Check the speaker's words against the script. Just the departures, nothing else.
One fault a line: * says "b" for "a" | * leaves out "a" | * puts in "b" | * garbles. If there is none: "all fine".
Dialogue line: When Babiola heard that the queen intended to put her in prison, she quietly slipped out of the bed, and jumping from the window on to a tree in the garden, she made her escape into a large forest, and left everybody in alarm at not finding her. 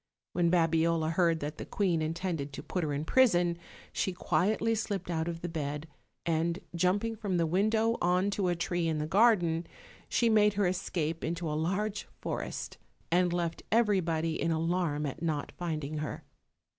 all fine